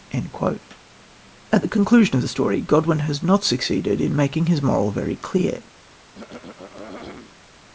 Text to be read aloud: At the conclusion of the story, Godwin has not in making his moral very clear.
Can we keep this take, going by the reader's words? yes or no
no